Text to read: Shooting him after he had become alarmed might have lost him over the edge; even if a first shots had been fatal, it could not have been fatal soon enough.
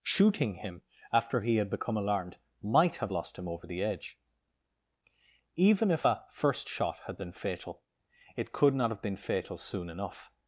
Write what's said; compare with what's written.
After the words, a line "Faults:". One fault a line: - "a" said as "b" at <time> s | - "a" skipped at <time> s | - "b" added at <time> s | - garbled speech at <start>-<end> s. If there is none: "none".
Shooting him after he had become alarmed might have lost him over the edge; even if a first shot had been fatal, it could not have been fatal soon enough.
Faults:
- "shots" said as "shot" at 6.7 s